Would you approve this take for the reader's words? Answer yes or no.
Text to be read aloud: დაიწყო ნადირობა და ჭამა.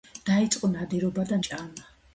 yes